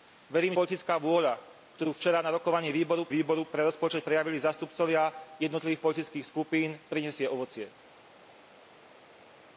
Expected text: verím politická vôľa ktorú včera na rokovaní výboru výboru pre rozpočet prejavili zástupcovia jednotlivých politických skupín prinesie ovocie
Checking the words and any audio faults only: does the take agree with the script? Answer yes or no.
yes